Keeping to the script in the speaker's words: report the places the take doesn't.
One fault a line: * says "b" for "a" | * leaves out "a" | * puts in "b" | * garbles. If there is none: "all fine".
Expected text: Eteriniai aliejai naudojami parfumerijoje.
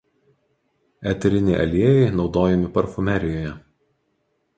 all fine